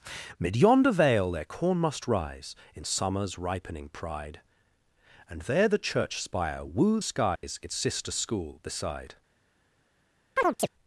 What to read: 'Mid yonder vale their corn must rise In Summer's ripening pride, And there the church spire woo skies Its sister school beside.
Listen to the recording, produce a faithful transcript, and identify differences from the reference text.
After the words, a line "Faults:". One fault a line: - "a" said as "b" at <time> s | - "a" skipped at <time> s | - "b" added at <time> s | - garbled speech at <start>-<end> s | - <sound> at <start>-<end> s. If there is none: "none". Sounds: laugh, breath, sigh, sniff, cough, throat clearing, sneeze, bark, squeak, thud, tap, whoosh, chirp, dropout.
'Mid yonder vale their corn must rise In Summer's ripening pride, And there the church spire woo skies Its sister school beside.
Faults:
- dropout at 7.4-7.4 s
- chirp at 10.4-10.7 s